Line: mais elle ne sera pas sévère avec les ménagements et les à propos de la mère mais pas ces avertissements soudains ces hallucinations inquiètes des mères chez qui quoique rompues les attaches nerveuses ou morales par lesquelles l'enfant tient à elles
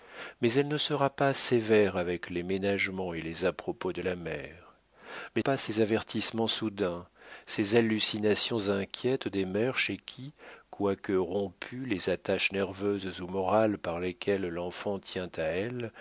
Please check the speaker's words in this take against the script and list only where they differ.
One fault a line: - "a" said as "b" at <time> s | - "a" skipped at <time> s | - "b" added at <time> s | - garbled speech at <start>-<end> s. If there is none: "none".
none